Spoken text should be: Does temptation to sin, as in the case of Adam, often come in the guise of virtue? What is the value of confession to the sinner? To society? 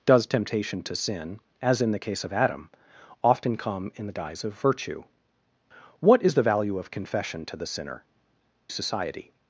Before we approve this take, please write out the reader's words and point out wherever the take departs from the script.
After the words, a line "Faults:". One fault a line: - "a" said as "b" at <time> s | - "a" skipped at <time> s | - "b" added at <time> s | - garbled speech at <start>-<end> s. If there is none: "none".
Does temptation to sin, as in the case of Adam, often come in the guise of virtue? What is the value of confession to the sinner? Society?
Faults:
- "To" skipped at 8.0 s